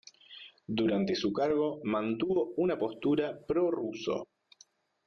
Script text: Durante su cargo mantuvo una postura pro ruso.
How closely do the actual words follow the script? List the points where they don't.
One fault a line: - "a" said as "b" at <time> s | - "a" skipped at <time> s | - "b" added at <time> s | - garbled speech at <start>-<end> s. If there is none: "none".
none